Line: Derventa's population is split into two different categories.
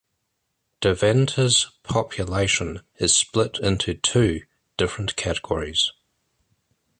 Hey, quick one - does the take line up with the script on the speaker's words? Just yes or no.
yes